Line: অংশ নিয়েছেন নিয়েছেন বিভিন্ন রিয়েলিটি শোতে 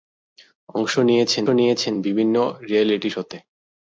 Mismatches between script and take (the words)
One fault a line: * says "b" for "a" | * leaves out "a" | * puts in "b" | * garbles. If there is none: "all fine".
all fine